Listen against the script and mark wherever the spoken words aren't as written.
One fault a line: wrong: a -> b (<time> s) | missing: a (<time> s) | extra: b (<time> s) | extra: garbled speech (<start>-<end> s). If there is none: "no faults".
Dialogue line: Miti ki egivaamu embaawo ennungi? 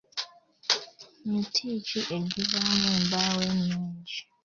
no faults